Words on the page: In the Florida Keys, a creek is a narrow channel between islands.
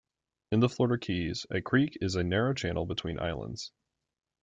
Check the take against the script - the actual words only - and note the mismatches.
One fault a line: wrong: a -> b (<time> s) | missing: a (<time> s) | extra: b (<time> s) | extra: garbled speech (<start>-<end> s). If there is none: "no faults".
no faults